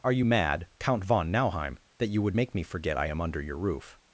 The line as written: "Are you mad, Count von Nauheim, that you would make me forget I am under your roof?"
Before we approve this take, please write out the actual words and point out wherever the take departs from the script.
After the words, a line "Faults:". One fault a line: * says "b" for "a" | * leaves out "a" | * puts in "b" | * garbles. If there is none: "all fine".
"Are you mad, Count von Nauheim, that you would make me forget I am under your roof?"
Faults:
all fine